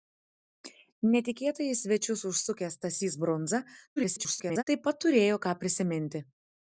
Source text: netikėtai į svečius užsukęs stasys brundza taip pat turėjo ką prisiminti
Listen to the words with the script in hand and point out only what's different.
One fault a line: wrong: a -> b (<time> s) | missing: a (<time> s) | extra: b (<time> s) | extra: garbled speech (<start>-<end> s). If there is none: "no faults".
extra: garbled speech (4.0-4.6 s)